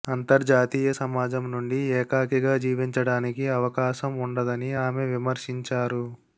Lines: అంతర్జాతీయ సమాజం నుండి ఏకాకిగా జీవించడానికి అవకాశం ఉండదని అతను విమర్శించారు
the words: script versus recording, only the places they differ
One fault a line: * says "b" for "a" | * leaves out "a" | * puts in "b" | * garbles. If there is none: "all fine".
* says "ఆమె" for "అతను"